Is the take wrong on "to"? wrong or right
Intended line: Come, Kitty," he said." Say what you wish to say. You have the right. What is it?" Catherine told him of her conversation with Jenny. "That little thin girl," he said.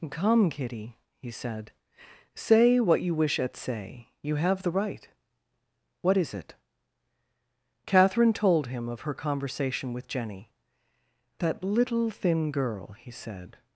wrong